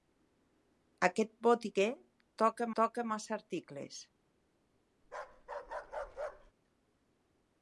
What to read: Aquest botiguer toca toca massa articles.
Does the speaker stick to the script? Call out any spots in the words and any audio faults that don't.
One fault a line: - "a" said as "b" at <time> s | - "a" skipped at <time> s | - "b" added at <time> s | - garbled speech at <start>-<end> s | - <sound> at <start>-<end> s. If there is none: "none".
- bark at 5.0-6.5 s